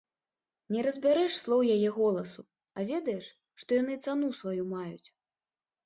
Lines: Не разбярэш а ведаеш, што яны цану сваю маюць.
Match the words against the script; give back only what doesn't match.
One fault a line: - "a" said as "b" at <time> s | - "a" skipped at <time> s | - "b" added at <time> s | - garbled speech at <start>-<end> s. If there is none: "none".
- "слоў яе голасу" added at 1.4 s